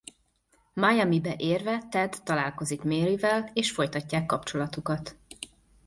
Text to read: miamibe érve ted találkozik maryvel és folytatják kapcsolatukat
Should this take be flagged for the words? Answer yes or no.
no